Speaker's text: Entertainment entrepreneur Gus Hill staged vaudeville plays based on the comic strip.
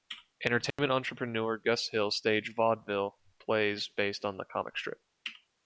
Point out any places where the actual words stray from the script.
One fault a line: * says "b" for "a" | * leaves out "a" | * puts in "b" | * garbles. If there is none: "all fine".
all fine